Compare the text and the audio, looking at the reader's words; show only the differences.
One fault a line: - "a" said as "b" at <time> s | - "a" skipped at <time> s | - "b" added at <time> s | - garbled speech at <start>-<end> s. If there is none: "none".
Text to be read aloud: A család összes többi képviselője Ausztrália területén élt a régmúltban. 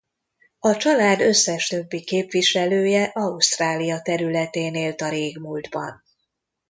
none